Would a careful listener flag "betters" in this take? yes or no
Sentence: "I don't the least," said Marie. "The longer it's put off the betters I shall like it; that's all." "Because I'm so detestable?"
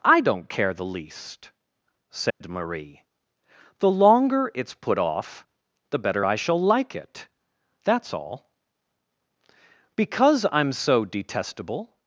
yes